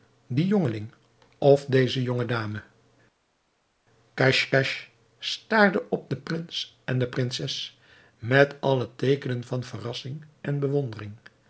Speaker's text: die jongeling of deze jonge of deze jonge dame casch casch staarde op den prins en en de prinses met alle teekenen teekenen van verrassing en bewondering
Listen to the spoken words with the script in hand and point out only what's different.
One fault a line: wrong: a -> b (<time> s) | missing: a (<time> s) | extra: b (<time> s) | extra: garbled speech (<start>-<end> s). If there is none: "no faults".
missing: of deze jonge (2.2 s)
missing: en (7.0 s)
missing: teekenen (9.4 s)